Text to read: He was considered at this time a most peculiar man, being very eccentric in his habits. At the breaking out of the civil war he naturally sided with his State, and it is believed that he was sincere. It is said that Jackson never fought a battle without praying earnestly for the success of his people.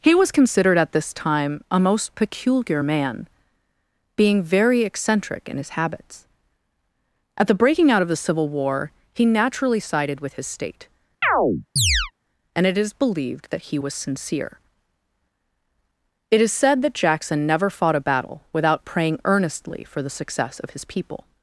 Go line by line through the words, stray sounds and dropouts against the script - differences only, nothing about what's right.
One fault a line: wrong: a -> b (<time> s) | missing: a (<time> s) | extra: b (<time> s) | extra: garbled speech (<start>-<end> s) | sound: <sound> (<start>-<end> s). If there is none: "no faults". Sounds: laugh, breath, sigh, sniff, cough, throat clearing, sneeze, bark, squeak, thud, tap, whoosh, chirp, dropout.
sound: chirp (11.2-12.1 s)